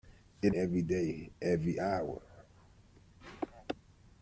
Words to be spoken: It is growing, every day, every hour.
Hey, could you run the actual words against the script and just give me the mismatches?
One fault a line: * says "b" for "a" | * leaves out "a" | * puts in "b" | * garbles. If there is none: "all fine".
* leaves out "is growing"